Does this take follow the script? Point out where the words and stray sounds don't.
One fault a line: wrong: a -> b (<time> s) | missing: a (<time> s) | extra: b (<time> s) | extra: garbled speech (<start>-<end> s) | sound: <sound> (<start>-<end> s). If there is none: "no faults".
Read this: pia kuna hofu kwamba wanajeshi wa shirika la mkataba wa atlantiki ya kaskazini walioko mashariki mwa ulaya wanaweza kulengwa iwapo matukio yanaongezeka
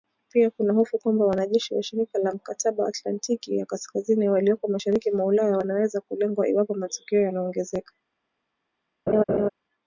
missing: wa (2.9 s)
sound: laugh (9.1-9.5 s)